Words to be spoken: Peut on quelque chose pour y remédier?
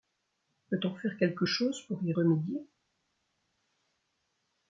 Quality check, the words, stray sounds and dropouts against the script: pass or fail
fail